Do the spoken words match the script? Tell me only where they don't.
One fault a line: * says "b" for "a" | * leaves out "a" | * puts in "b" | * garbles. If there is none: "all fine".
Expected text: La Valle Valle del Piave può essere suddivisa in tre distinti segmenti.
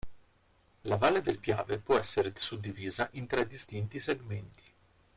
* leaves out "Valle"